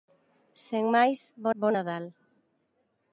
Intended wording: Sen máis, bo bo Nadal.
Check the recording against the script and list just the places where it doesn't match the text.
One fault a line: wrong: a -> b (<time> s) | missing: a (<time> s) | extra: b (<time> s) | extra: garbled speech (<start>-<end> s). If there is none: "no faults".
no faults